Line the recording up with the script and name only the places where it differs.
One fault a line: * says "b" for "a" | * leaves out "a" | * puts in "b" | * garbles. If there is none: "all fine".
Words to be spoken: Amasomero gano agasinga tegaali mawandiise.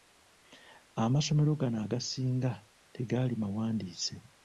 all fine